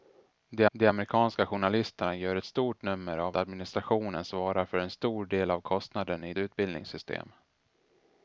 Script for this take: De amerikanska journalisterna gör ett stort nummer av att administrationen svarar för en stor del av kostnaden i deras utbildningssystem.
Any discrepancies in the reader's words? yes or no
yes